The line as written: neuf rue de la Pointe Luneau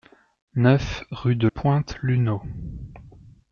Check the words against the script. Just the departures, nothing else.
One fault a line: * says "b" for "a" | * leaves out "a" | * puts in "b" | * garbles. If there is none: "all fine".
* leaves out "la"